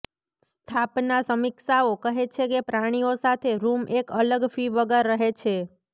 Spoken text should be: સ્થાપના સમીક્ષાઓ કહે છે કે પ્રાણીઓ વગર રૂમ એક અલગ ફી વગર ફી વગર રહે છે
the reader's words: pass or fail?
fail